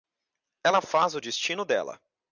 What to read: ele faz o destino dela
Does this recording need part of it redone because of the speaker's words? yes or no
yes